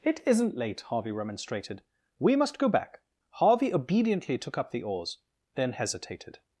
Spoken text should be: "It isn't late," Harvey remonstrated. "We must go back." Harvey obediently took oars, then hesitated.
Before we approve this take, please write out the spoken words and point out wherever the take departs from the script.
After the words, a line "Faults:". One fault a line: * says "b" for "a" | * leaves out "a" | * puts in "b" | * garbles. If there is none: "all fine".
"It isn't late," Harvey remonstrated. "We must go back." Harvey obediently took up the oars, then hesitated.
Faults:
* puts in "up the"